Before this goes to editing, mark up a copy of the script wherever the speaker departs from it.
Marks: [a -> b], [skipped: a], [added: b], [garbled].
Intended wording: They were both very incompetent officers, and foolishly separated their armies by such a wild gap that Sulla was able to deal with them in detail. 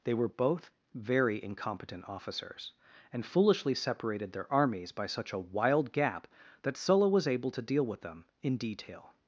They were both very incompetent officers, and foolishly separated their armies by such a wild gap that Sulla was able to deal with them in detail.